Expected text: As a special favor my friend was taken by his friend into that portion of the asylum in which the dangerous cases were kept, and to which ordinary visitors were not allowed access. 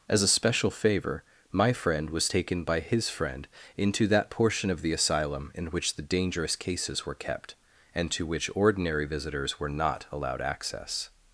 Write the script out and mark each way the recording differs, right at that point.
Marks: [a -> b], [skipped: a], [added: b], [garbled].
As a special favor my friend was taken by his friend into that portion of the asylum in which the dangerous cases were kept, and to which ordinary visitors were not allowed access.